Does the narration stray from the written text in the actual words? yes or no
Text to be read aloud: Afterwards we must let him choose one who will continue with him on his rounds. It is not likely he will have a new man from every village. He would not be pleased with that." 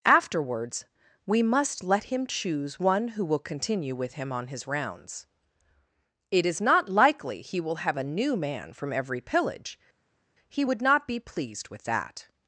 yes